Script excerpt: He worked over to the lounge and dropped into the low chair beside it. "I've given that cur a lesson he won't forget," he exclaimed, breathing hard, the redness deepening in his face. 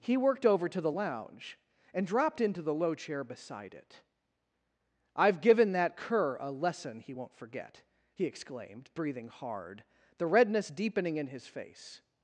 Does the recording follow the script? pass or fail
pass